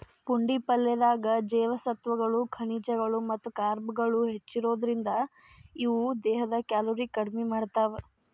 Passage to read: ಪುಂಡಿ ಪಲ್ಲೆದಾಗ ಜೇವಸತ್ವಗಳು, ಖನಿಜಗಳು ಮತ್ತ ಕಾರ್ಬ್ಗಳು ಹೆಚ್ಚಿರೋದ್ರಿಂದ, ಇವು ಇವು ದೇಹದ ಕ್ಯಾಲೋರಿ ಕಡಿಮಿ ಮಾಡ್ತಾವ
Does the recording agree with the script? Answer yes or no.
no